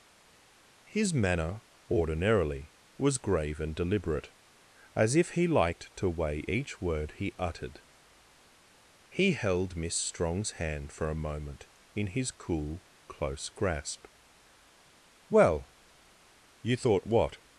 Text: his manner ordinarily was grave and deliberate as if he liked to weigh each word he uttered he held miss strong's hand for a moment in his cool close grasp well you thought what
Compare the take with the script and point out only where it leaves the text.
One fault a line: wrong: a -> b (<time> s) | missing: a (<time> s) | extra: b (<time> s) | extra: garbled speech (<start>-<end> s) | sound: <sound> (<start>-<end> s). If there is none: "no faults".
no faults